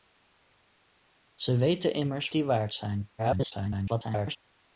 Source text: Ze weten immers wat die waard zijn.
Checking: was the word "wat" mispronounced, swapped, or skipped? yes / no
yes